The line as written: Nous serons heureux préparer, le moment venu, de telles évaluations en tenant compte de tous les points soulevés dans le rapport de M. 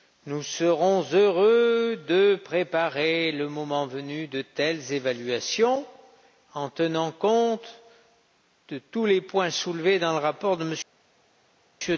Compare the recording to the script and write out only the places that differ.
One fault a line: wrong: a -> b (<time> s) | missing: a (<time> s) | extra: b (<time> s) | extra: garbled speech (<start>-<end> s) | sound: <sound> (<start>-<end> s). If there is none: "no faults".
extra: de (2.1 s)